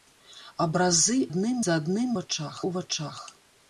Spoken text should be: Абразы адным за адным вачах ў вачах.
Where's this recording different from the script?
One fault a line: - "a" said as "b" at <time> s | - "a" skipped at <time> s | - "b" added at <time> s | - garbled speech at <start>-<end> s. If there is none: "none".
none